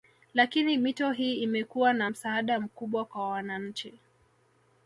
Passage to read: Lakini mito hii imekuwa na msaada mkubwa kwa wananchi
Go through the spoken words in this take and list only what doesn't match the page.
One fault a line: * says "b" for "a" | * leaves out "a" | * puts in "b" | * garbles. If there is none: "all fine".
all fine